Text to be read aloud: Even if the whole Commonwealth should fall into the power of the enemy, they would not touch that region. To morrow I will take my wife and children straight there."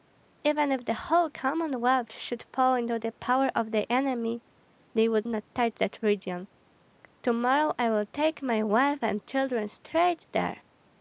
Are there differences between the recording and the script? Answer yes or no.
no